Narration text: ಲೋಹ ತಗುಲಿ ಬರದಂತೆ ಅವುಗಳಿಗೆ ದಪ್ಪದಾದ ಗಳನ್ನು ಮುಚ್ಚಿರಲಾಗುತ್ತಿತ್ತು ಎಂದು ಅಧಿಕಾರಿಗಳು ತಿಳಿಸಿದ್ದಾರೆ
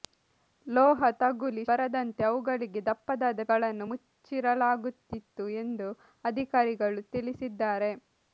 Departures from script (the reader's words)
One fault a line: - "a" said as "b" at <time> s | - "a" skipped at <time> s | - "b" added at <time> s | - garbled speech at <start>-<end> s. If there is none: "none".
none